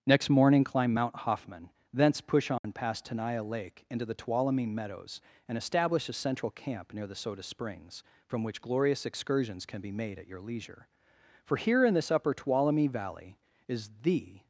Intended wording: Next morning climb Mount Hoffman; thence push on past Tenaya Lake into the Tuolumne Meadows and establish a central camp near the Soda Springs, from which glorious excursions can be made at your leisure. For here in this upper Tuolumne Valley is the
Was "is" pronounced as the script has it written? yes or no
yes